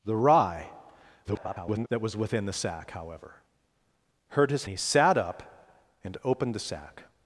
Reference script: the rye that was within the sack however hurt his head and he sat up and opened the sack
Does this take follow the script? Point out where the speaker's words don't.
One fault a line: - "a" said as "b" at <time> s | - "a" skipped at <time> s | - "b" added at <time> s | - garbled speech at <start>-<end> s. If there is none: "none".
- garbled speech at 1.2-1.9 s
- "head and" skipped at 4.7 s